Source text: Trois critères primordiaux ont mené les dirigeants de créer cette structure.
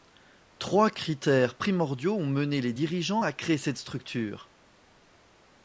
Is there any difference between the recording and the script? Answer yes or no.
yes